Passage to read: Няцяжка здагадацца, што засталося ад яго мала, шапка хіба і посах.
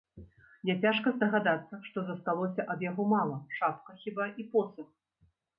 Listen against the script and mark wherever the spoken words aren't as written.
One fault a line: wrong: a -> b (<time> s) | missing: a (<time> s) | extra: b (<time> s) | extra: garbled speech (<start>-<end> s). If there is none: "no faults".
no faults